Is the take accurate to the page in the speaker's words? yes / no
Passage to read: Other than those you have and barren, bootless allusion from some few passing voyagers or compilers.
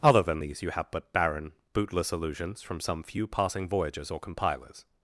no